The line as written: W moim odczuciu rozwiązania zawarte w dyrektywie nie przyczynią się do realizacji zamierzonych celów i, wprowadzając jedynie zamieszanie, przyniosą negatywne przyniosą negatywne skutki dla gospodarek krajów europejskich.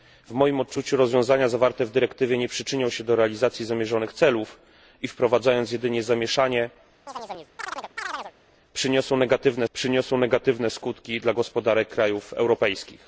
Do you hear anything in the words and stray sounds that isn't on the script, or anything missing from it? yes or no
yes